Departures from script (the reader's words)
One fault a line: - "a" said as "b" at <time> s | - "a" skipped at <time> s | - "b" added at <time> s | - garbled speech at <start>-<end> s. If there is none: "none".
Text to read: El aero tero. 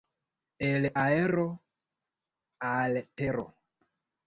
- "al" added at 2.6 s